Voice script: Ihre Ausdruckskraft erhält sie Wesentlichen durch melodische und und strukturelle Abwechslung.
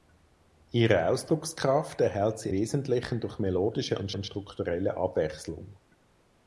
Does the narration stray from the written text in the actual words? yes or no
no